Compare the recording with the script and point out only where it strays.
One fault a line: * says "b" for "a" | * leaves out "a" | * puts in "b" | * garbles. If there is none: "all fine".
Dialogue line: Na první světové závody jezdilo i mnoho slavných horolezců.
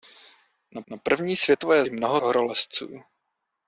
* puts in "na"
* leaves out "závody jezdilo"
* leaves out "slavných"